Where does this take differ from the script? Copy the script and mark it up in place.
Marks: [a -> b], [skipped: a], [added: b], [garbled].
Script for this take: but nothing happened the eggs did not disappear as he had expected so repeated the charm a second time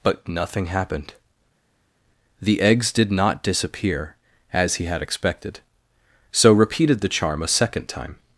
but nothing happened the eggs did not disappear as he had expected so repeated the charm a second time